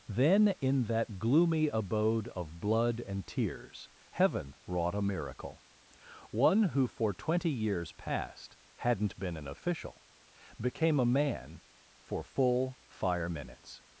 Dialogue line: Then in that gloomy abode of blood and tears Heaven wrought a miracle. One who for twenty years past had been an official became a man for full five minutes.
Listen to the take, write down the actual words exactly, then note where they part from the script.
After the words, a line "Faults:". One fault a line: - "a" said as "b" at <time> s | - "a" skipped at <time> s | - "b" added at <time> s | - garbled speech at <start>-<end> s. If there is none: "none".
Then in that gloomy abode of blood and tears Heaven wrought a miracle. One who for twenty years past hadn't been an official became a man for full fire minutes.
Faults:
- "had" said as "hadn't" at 8.8 s
- "five" said as "fire" at 12.9 s